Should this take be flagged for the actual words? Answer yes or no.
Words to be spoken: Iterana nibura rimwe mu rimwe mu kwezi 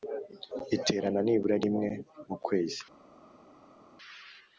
yes